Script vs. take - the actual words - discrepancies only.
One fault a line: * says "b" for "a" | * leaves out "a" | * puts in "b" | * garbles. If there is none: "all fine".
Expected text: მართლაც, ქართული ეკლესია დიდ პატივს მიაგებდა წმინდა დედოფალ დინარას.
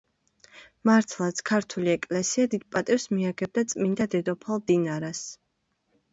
all fine